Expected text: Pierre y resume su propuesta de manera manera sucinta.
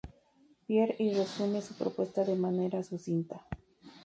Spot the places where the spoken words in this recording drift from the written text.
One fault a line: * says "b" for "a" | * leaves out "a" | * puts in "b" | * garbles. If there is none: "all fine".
* leaves out "manera"